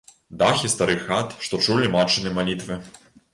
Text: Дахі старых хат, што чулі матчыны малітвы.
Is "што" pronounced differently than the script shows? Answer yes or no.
no